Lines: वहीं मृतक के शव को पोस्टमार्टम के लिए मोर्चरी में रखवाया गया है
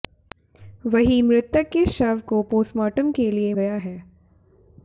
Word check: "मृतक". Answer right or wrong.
right